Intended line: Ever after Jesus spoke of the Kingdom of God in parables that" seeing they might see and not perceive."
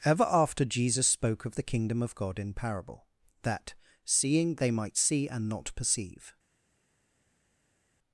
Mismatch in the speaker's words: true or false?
true